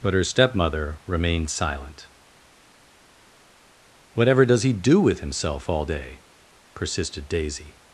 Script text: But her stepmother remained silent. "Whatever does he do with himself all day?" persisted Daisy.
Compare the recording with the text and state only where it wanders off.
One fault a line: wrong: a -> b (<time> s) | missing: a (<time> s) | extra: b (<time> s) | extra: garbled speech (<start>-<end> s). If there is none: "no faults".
no faults